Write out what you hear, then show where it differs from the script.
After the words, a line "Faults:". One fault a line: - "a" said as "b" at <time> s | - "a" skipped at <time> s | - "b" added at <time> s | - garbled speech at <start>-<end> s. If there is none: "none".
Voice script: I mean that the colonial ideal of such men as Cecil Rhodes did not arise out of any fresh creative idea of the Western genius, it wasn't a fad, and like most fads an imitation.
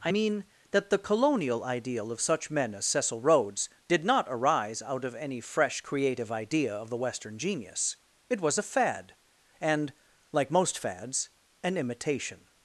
I mean that the colonial ideal of such men as Cecil Rhodes did not arise out of any fresh creative idea of the Western genius, it was a fad, and like most fads an imitation.
Faults:
- "wasn't" said as "was" at 8.4 s